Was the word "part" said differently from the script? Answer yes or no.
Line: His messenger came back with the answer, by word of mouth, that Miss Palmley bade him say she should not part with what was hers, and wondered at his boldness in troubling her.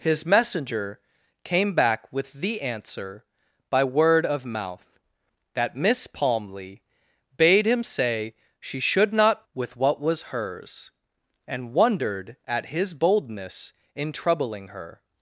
yes